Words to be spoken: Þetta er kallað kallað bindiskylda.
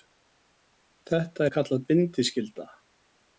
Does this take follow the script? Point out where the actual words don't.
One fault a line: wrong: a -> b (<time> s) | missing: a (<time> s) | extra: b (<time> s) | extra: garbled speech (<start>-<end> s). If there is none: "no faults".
missing: kallað (1.9 s)